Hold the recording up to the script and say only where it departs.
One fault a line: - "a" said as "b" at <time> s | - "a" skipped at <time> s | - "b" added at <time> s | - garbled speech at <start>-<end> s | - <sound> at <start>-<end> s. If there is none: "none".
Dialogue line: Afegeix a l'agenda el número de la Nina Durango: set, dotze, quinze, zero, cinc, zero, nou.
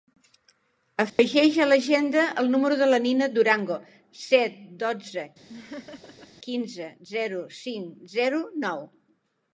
- dropout at 1.1-1.2 s
- laugh at 5.5-6.3 s